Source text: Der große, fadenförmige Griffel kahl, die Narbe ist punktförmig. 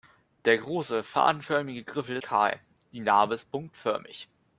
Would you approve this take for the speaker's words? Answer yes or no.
yes